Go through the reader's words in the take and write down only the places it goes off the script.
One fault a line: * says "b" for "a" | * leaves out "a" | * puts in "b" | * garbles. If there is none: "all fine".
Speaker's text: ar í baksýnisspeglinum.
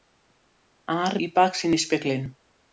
all fine